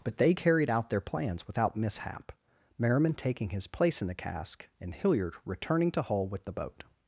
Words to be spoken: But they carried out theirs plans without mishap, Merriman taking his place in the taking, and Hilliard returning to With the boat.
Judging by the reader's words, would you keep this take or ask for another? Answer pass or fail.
fail